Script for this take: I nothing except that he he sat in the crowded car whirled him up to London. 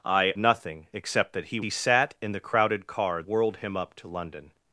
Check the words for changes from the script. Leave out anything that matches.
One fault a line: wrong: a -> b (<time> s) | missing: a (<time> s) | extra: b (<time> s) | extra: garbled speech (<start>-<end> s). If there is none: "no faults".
no faults